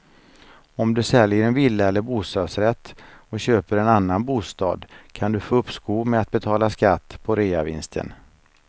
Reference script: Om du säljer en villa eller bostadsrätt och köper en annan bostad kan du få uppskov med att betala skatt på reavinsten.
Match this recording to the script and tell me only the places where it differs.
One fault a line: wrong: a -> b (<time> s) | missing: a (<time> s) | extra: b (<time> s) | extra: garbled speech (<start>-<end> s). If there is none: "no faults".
no faults